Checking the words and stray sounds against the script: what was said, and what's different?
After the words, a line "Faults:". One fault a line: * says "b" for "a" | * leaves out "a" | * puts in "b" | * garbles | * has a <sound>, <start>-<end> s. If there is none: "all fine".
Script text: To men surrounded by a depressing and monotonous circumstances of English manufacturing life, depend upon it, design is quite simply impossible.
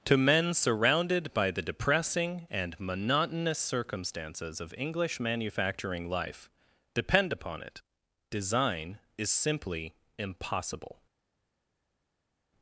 To men surrounded by the depressing and monotonous circumstances of English manufacturing life, depend upon it, design is simply impossible.
Faults:
* says "the" for "a"
* leaves out "quite"